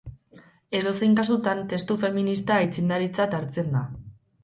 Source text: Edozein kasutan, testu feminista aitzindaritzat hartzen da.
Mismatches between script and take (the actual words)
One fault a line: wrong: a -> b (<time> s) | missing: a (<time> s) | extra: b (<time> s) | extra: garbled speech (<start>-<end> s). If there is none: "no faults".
no faults